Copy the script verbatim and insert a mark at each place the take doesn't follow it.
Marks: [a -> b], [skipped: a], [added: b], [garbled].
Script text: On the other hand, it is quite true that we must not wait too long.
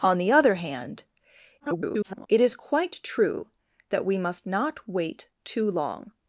On the other hand, [garbled] it is quite true that we must not wait too long.